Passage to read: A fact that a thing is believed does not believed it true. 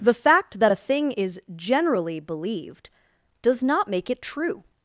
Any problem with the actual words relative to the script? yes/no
yes